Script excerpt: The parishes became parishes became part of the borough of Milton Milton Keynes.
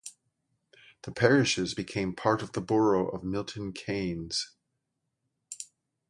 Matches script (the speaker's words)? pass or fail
fail